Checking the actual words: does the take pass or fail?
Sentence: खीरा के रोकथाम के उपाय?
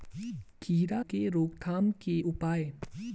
pass